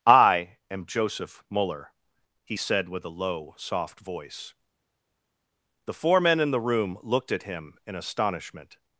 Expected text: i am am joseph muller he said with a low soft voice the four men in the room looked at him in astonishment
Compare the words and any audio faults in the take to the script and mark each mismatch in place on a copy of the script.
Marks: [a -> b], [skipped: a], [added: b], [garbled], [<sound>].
i am [skipped: am] joseph muller he said with a low soft voice the four men in the room looked at him in astonishment